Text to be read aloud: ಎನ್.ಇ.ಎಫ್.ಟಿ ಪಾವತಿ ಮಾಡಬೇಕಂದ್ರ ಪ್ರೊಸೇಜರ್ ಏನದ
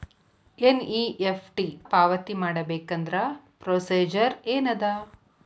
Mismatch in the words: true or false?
false